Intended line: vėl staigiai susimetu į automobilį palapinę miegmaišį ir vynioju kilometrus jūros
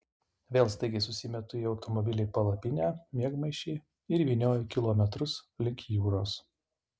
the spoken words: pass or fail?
fail